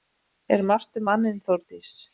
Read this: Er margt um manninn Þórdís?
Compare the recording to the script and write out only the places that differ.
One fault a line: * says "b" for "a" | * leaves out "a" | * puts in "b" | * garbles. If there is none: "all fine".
all fine